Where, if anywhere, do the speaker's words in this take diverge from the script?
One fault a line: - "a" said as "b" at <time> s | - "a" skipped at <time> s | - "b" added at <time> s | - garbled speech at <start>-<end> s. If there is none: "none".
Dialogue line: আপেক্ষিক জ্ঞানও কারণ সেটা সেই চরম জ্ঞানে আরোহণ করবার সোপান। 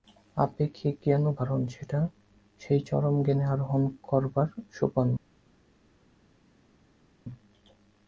none